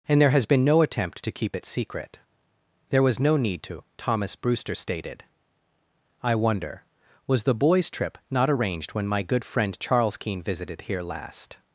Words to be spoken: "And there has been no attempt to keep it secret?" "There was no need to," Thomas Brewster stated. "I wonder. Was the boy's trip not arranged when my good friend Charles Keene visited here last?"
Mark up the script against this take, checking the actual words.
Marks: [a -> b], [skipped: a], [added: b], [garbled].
"And there has been no attempt to keep it secret?" "There was no need to," Thomas Brewster stated. "I wonder. Was the boy's trip not arranged when my good friend Charles Keene visited here last?"